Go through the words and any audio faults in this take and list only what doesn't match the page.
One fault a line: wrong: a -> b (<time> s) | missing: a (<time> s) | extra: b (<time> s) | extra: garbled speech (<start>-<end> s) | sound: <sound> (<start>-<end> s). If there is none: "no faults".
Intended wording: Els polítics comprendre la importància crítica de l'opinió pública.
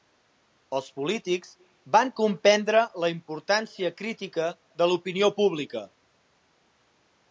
extra: van (2.0 s)